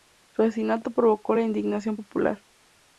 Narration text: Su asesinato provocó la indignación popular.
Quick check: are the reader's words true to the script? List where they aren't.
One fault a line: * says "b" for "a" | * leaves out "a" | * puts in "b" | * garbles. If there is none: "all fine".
all fine